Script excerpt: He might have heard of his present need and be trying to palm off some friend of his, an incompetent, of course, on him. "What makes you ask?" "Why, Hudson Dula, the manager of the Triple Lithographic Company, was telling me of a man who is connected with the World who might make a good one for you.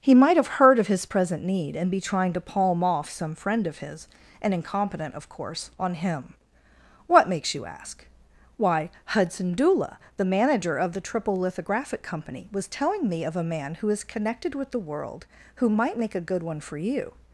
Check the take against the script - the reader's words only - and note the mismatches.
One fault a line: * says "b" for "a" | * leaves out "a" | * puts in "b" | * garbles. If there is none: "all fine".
all fine